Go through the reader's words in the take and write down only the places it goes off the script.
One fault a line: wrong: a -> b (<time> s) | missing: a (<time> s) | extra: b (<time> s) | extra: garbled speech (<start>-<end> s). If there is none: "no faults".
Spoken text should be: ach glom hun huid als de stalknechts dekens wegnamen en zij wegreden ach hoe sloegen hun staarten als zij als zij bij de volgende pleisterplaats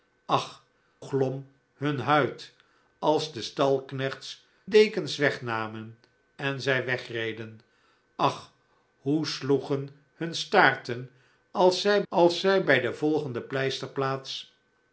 no faults